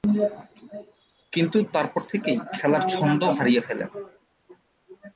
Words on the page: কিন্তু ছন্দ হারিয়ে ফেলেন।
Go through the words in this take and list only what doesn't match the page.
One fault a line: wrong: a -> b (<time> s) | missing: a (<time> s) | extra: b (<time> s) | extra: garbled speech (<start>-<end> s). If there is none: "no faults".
extra: তারপর থেকেই খেলার (1.7 s)